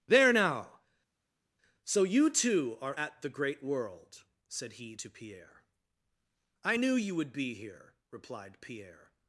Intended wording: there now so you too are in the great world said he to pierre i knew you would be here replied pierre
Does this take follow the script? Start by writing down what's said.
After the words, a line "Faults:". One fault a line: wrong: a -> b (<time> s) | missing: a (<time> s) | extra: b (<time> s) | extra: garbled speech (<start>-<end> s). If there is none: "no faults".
there now so you too are at the great world said he to pierre i knew you would be here replied pierre
Faults:
wrong: in -> at (2.9 s)